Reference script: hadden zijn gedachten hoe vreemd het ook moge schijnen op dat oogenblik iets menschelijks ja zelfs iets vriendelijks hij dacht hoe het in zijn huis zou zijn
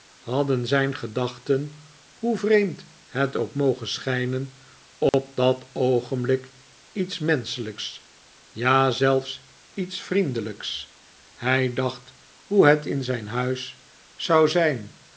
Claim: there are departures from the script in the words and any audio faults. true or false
true